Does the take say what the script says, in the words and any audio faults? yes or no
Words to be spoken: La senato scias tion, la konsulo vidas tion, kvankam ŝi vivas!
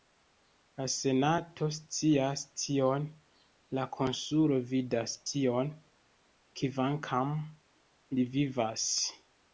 no